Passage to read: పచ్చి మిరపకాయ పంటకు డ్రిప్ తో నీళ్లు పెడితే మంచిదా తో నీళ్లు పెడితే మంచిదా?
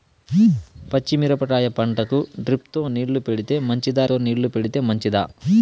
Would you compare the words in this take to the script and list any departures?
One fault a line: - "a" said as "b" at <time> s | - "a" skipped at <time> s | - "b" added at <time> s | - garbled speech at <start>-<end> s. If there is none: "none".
none